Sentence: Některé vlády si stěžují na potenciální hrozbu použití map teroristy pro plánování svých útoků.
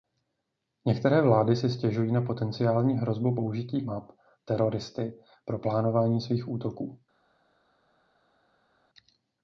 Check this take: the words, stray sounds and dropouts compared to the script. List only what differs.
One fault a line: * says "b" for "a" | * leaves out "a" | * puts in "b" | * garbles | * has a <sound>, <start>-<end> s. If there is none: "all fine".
all fine